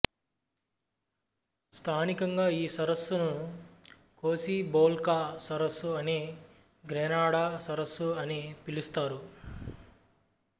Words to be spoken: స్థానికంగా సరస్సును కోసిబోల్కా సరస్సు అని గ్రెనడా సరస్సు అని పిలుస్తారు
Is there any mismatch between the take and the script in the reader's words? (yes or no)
yes